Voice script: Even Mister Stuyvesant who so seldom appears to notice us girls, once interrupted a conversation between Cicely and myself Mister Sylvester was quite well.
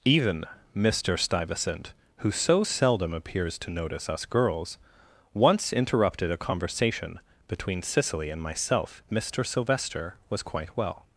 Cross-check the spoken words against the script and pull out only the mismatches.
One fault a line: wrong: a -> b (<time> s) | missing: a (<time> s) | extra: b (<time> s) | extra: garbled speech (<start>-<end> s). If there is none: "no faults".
no faults